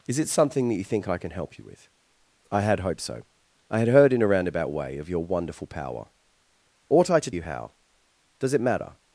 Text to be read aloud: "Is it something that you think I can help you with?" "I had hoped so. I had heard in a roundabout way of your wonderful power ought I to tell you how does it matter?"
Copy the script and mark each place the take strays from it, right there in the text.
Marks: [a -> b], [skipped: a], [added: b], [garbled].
"Is it something that you think I can help you with?" "I had hoped so. I had heard in a roundabout way of your wonderful power ought I to [skipped: tell] you how does it matter?"